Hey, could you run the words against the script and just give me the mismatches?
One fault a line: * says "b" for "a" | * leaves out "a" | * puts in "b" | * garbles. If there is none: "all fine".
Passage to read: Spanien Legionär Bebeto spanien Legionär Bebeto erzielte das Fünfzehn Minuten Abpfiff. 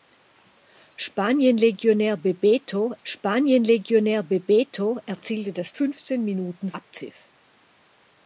all fine